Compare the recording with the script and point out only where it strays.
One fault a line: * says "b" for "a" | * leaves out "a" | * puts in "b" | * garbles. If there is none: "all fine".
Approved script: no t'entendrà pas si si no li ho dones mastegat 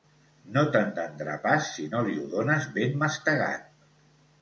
* leaves out "si"
* puts in "ben"